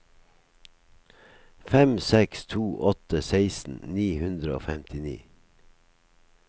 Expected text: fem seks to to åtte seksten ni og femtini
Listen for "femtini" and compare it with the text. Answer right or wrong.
right